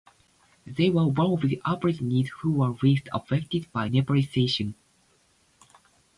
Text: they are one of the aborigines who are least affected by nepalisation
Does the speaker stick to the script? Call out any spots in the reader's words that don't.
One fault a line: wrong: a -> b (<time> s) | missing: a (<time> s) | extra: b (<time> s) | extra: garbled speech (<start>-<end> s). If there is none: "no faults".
wrong: are -> were (0.9 s)
wrong: are -> were (2.5 s)